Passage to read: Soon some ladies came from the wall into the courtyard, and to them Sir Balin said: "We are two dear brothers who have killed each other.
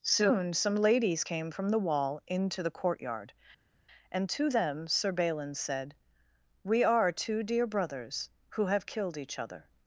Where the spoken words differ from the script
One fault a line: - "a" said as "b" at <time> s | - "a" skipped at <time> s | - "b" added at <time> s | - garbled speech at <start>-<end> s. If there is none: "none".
none